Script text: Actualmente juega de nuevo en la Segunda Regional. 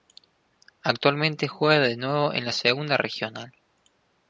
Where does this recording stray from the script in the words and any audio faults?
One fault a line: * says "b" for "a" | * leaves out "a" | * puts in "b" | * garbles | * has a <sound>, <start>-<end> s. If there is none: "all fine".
all fine